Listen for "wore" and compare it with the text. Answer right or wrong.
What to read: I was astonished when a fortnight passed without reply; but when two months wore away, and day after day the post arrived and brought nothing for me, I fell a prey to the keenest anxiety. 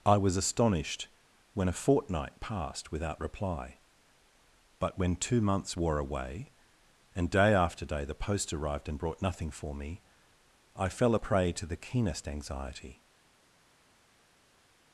right